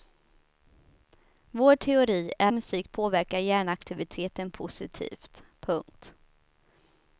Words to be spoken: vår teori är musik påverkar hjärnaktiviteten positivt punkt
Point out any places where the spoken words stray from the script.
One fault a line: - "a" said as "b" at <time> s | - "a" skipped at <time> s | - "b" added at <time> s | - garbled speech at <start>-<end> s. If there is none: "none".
none